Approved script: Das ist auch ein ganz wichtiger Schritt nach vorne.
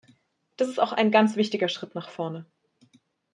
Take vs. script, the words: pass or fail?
pass